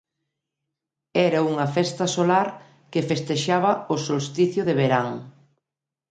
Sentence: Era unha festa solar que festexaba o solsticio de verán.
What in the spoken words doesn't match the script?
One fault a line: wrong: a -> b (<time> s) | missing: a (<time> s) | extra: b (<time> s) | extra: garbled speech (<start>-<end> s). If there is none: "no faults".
no faults